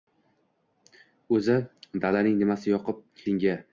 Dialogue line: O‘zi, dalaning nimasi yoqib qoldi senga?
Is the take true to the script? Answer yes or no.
no